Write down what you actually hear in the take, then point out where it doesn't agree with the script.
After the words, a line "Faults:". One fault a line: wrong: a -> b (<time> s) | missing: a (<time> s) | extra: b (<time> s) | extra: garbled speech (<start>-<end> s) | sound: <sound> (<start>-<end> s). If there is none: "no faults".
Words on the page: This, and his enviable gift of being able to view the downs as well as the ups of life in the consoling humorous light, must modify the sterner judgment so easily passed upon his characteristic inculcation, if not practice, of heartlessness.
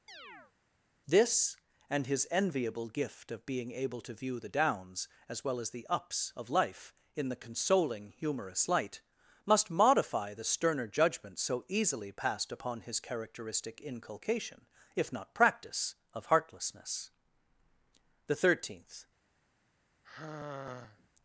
This, and his enviable gift of being able to view the downs as well as the ups of life in the consoling humorous light, must modify the sterner judgment so easily passed upon his characteristic inculcation, if not practice, of heartlessness. The thirteenth
Faults:
sound: chirp (0.1-0.5 s)
extra: The thirteenth (18.3 s)
sound: sigh (20.0-21.1 s)